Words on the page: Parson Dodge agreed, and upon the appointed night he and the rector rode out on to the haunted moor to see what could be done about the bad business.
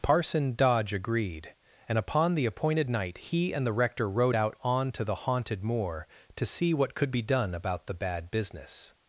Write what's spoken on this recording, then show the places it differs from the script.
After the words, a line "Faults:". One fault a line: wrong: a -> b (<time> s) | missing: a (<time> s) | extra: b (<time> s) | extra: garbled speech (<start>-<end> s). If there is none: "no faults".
Parson Dodge agreed, and upon the appointed night he and the rector rode out on to the haunted moor to see what could be done about the bad business.
Faults:
no faults